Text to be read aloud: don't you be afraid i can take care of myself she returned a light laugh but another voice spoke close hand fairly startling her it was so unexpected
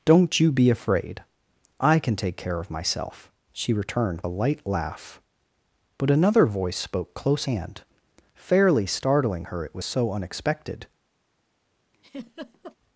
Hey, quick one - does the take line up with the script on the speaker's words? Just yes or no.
yes